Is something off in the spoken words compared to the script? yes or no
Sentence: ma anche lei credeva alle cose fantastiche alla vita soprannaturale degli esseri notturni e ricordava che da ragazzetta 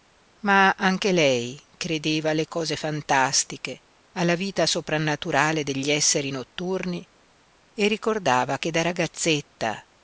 no